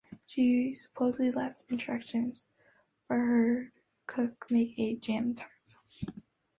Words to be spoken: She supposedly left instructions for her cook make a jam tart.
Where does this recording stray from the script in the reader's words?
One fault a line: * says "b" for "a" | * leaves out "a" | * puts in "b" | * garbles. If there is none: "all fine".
all fine